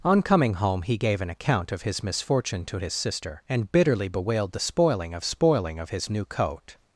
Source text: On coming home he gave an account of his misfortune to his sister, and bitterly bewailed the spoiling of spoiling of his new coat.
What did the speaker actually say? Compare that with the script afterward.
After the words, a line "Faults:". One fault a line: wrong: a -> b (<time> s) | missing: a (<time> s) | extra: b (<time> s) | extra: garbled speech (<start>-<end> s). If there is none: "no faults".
On coming home he gave an account of his misfortune to his sister, and bitterly bewailed the spoiling of spoiling of his new coat.
Faults:
no faults